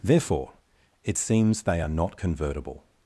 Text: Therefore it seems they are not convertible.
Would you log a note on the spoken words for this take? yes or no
no